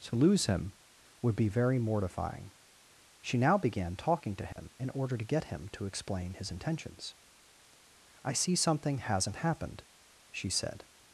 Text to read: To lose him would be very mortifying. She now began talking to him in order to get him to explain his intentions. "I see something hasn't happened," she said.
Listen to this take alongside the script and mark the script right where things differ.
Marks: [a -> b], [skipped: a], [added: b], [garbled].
To lose him would be very mortifying. She now began talking to him in order to get him to explain his intentions. "I see something hasn't happened," she said.